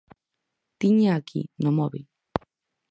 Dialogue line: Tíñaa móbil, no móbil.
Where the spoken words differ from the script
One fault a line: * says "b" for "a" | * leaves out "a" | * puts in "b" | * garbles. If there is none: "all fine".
* says "aquí" for "móbil"